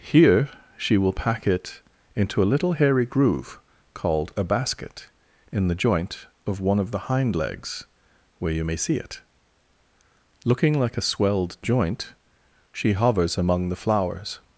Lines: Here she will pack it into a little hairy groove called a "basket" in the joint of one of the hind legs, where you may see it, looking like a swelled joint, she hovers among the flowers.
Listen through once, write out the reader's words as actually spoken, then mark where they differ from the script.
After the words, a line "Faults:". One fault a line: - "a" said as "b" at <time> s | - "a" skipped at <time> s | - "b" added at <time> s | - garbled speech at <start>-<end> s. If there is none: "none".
Here she will pack it into a little hairy groove called a "basket" in the joint of one of the hind legs, where you may see it, looking like a swelled joint, she hovers among the flowers.
Faults:
none